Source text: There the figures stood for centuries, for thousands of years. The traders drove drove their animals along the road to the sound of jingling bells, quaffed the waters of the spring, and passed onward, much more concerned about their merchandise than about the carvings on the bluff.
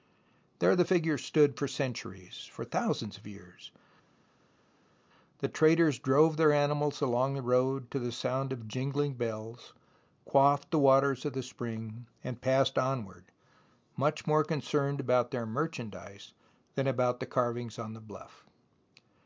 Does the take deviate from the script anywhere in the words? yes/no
yes